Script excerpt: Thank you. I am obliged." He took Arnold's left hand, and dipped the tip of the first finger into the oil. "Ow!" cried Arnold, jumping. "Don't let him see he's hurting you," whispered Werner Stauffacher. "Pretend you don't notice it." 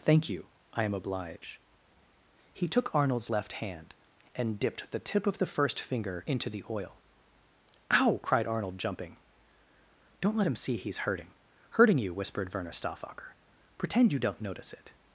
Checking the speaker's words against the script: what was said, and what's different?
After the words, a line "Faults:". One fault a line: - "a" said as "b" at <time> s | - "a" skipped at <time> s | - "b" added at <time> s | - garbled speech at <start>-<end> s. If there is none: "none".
Thank you. I am obliged." He took Arnold's left hand, and dipped the tip of the first finger into the oil. "Ow!" cried Arnold, jumping. "Don't let him see he's hurting hurting you," whispered Werner Stauffacher. "Pretend you don't notice it."
Faults:
- "hurting" added at 11.8 s